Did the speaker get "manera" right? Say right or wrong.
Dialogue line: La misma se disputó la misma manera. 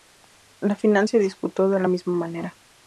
right